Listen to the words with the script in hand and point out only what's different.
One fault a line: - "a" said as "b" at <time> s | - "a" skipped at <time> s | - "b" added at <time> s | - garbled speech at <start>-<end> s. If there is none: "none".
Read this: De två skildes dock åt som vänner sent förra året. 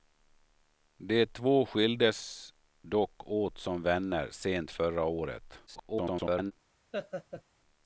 - garbled speech at 5.7-6.5 s